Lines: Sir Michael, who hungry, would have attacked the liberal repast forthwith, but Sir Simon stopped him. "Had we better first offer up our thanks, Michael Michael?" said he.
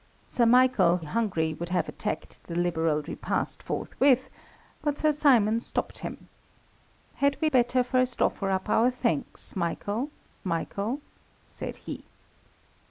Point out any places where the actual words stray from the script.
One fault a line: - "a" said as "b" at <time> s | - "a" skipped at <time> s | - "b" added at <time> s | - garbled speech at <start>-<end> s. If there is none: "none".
none